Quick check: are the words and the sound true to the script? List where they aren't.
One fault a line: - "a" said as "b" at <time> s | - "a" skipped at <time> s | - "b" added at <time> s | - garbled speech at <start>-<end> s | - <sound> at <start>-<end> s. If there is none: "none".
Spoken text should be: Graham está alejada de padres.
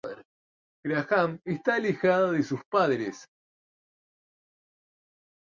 - "sus" added at 2.4 s